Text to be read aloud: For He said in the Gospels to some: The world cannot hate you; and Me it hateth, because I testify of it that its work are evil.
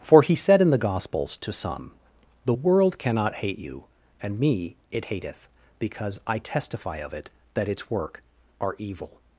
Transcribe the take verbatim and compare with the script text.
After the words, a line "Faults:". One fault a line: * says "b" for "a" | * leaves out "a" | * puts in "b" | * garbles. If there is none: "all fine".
For He said in the Gospels to some: The world cannot hate you; and Me it hateth, because I testify of it that its work are evil.
Faults:
all fine